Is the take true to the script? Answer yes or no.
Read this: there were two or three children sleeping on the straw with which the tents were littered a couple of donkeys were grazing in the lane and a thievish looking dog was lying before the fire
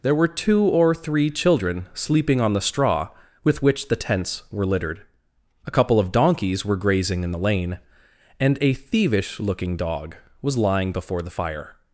yes